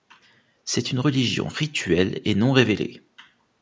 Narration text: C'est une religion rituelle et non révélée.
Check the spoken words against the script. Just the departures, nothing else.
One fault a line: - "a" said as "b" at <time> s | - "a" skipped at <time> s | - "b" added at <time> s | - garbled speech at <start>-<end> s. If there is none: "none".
none